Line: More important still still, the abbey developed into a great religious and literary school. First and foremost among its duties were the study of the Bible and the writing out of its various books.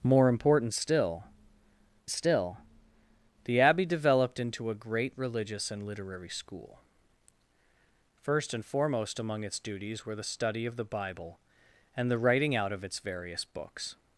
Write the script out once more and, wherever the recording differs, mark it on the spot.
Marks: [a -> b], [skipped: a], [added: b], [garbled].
More important still still, the abbey developed into a great religious and literary school. First and foremost among its duties were the study of the Bible and the writing out of its various books.